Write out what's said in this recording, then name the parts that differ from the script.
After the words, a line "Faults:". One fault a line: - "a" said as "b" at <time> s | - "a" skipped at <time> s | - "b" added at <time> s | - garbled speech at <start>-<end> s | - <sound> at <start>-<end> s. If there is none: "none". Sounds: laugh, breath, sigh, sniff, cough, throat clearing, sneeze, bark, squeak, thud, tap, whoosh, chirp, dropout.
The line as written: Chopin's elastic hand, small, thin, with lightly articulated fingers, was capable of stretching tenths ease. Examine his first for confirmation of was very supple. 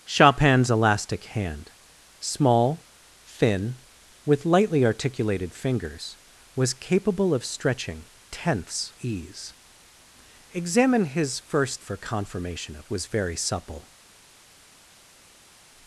Chopin's elastic hand, small, thin, with lightly articulated fingers, was capable of stretching tenths ease. Examine his first for confirmation of was very supple.
Faults:
none